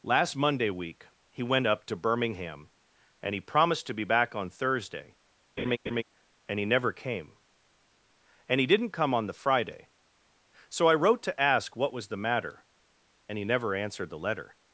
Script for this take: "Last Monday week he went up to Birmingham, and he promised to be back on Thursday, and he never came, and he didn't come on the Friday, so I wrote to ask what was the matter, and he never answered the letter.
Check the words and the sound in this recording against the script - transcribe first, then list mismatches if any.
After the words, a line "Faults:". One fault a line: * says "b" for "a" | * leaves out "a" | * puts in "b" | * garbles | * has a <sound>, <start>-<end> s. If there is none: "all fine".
"Last Monday week he went up to Birmingham, and he promised to be back on Thursday, and he never came, and he didn't come on the Friday, so I wrote to ask what was the matter, and he never answered the letter.
Faults:
* has a laugh, 5.6-6.0 s